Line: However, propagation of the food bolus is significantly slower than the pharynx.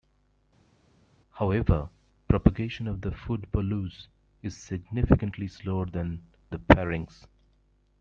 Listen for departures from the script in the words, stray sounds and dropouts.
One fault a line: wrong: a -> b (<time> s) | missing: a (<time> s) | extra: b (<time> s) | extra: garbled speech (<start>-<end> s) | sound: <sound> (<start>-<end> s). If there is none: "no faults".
no faults